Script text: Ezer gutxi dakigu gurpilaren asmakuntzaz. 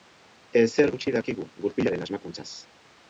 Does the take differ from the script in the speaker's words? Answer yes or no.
no